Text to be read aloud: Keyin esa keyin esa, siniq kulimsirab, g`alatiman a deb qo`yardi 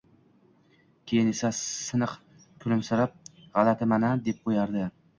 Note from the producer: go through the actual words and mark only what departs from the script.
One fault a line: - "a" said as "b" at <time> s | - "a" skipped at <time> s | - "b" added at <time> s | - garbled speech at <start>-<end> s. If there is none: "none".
- "keyin esa" skipped at 1.5 s